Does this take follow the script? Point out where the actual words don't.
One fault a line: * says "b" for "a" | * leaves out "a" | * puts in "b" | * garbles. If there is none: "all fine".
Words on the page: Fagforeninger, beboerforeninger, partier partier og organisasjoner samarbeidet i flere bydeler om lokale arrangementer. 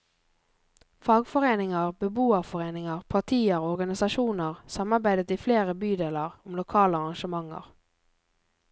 * leaves out "partier"